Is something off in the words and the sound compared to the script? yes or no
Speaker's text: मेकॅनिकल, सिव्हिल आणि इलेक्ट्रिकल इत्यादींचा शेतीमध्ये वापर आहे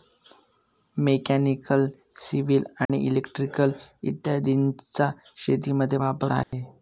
yes